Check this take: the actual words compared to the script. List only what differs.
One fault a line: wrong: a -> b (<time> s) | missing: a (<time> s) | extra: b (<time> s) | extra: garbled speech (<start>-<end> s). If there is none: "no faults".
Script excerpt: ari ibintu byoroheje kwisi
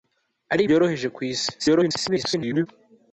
missing: ibintu (0.6 s)
extra: garbled speech (1.6-2.7 s)